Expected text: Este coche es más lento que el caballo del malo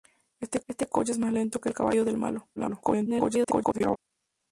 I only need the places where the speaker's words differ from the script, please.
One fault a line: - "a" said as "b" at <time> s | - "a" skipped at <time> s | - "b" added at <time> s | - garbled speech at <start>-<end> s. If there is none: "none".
- "este" added at 0.7 s
- garbled speech at 2.6-4.0 s